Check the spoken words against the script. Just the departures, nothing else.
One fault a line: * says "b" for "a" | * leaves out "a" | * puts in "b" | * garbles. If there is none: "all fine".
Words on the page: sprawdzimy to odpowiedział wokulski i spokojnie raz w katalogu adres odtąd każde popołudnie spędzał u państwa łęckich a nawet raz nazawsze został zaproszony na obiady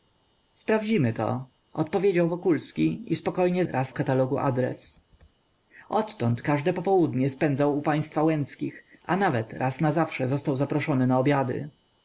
all fine